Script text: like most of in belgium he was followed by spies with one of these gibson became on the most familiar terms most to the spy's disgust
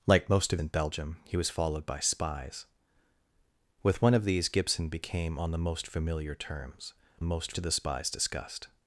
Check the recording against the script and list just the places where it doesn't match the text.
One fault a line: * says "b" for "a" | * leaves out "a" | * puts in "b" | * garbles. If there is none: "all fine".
all fine